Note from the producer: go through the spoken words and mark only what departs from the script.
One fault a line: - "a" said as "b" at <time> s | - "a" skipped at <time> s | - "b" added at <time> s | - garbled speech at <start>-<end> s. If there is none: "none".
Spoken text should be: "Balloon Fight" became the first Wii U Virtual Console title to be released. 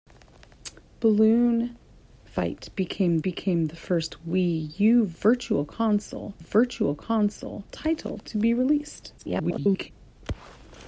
- "became" added at 3.2 s
- "Virtual Console" added at 6.4 s
- garbled speech at 9.2-9.9 s